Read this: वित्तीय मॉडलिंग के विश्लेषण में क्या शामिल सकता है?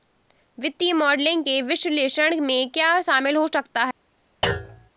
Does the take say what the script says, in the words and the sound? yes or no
no